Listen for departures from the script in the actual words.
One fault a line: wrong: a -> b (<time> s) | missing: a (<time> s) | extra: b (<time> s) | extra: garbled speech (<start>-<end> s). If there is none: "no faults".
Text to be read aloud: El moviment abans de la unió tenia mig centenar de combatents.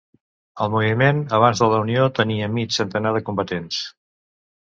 no faults